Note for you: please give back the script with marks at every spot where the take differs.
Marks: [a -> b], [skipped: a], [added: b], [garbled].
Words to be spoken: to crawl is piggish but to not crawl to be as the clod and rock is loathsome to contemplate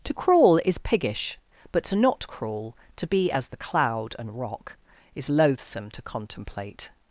to crawl is piggish but to not crawl to be as the [clod -> cloud] and rock is loathsome to contemplate